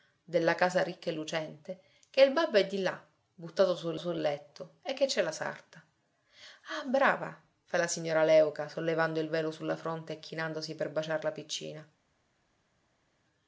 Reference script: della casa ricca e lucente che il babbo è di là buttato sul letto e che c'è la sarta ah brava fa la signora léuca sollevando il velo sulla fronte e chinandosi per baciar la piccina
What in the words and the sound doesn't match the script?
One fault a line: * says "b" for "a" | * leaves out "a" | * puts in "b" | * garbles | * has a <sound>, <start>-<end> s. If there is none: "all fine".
* puts in "sul"